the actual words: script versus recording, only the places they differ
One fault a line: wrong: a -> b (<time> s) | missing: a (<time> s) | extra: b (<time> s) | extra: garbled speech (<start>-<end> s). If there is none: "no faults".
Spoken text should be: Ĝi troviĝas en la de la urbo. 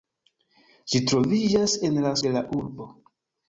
no faults